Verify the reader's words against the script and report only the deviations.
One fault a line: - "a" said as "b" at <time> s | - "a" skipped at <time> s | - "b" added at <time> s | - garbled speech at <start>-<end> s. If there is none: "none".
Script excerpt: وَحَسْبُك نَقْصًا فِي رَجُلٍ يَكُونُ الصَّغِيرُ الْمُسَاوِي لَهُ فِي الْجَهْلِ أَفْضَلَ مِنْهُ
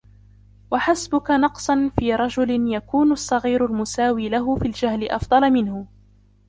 none